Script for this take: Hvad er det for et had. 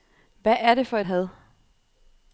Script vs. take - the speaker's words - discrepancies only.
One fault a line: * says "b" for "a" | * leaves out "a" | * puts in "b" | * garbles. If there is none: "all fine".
all fine